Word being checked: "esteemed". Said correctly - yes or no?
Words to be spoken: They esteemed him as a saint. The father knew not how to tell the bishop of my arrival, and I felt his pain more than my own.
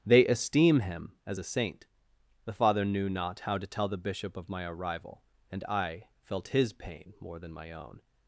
no